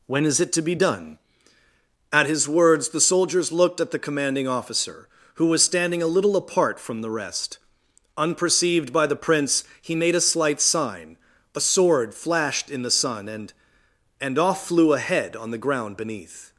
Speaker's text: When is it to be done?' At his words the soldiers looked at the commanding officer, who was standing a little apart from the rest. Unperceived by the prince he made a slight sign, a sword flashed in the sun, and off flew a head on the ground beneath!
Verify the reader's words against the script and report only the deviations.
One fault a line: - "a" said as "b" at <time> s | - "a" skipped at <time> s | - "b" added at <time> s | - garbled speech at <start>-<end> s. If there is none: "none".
- "and" added at 14.2 s